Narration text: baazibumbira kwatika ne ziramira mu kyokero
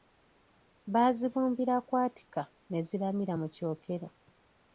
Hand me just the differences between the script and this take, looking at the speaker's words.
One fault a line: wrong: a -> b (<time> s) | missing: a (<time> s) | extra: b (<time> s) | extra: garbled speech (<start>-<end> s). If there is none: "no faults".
no faults